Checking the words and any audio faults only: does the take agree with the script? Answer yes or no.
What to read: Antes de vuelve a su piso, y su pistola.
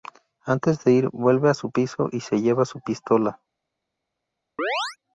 no